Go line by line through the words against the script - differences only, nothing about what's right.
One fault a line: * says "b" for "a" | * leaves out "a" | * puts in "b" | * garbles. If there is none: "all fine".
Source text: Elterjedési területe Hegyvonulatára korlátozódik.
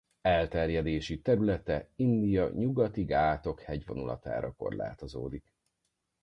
* puts in "India Nyugati Ghátok"